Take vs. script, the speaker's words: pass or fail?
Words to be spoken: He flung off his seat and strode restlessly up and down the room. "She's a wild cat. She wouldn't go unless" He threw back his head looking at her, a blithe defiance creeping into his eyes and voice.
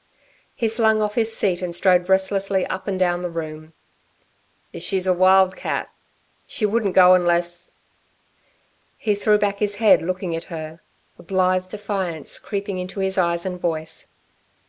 pass